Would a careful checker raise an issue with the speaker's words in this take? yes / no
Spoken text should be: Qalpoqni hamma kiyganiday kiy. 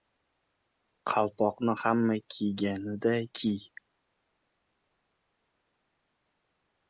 no